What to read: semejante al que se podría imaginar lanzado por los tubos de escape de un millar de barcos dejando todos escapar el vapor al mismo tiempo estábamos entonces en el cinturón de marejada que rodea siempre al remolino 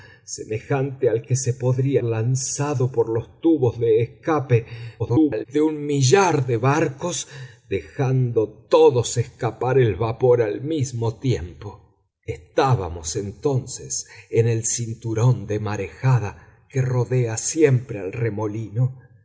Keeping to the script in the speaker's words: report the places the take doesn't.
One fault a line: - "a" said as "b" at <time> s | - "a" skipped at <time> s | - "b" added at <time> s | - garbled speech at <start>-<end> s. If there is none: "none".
- "imaginar" skipped at 2.0 s
- garbled speech at 5.0-5.5 s